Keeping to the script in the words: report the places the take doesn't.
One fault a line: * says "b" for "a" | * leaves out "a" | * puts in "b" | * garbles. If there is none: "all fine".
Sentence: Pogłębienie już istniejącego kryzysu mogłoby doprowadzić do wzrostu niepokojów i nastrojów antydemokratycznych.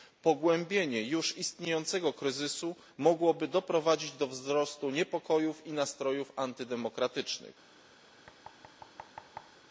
all fine